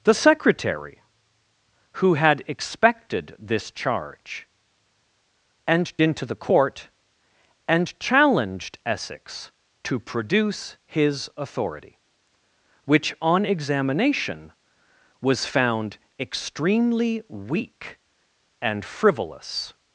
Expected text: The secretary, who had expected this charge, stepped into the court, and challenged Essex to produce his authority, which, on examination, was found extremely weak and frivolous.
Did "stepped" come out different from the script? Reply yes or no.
yes